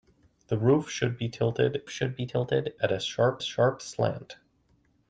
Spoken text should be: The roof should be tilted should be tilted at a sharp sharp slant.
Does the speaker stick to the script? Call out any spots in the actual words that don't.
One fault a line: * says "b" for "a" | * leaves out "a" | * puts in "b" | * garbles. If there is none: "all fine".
all fine